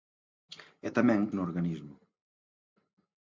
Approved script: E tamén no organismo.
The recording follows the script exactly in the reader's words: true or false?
true